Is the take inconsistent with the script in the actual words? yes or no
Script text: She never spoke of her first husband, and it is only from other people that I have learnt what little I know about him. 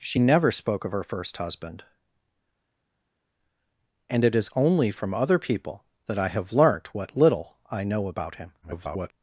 yes